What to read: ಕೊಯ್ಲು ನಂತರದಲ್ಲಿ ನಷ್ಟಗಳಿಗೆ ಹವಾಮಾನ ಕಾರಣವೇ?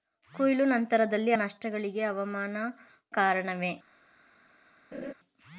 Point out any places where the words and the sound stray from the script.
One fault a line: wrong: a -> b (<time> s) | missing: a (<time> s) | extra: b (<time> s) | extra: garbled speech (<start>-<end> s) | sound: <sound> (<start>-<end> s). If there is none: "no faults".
sound: laugh (4.9-5.1 s)